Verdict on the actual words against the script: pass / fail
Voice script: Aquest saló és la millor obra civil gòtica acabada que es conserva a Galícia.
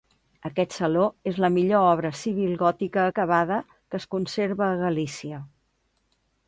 pass